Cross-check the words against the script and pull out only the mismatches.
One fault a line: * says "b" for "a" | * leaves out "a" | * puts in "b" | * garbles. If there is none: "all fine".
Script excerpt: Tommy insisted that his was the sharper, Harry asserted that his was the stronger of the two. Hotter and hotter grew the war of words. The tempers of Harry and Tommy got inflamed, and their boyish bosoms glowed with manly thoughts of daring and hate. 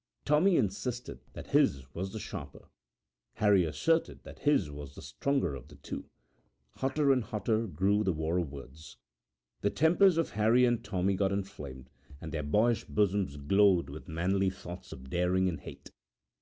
all fine